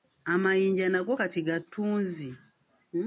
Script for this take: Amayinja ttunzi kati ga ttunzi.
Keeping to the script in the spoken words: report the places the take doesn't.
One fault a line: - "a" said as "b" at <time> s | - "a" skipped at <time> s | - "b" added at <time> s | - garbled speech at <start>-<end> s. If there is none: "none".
- "ttunzi" said as "nago" at 0.9 s